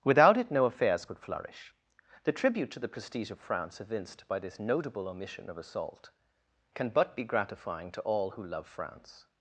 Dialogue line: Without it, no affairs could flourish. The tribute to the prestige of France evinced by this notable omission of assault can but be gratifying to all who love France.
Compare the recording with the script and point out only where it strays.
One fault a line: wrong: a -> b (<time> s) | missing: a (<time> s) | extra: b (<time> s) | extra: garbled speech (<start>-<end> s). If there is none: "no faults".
no faults